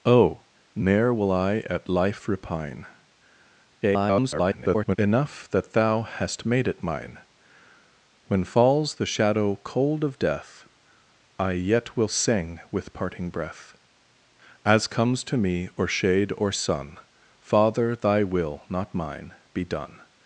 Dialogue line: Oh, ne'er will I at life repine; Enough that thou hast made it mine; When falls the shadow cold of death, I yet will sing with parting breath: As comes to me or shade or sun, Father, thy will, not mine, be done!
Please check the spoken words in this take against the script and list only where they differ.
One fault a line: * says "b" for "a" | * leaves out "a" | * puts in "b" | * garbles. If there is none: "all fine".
* garbles